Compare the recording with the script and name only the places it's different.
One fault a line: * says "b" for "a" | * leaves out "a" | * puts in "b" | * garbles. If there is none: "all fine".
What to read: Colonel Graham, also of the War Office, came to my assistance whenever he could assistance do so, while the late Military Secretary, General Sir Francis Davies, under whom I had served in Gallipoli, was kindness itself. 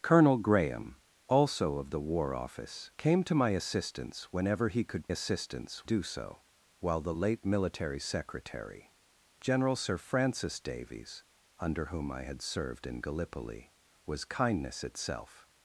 all fine